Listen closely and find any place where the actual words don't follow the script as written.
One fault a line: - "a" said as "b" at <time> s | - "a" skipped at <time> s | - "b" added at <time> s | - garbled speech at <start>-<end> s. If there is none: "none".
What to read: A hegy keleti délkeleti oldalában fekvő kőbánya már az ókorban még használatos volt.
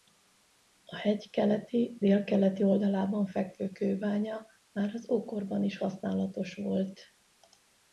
- "még" said as "is" at 5.6 s